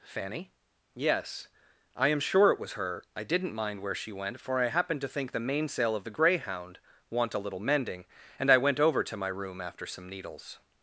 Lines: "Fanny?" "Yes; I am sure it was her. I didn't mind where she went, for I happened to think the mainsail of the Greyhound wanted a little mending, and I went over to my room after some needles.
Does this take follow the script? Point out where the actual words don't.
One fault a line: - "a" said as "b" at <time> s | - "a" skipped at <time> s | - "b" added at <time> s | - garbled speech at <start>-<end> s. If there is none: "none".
- "wanted" said as "want" at 7.1 s